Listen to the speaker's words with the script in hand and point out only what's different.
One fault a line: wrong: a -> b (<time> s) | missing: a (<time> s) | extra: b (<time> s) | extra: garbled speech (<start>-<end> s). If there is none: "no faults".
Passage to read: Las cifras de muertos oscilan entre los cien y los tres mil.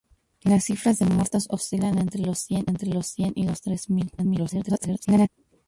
extra: entre los cien (2.7 s)
extra: garbled speech (4.2-5.3 s)